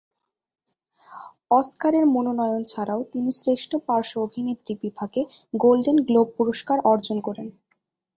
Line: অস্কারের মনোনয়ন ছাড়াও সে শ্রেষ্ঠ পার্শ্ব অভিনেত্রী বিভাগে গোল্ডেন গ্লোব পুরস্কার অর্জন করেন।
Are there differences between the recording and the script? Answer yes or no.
yes